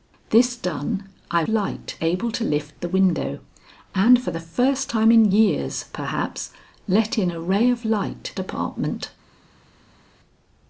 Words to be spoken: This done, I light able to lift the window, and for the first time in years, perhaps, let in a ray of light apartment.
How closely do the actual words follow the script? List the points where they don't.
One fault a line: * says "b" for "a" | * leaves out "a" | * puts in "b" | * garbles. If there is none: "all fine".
all fine